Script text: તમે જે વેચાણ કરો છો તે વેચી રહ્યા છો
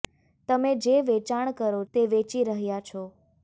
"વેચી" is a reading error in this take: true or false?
false